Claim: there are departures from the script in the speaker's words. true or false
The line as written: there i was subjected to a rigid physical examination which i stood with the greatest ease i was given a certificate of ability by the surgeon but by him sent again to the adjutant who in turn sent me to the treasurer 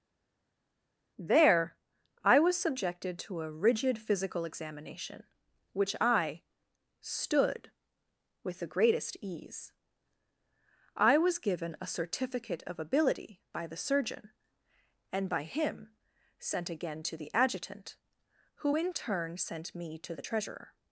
true